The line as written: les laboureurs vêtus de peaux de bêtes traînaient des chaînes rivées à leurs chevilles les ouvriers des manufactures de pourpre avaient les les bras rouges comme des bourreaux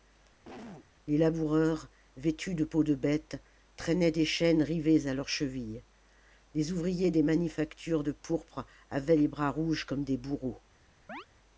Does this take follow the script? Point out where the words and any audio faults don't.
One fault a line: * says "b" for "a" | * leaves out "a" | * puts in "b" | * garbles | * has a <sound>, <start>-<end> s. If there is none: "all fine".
* has a cough, 0.4-0.9 s
* leaves out "les"
* has a chirp, 11.1-11.3 s